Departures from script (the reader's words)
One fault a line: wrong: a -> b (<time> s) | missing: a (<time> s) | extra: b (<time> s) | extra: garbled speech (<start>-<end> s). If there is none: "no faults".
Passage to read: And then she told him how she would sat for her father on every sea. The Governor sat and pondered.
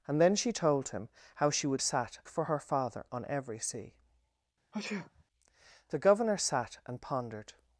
no faults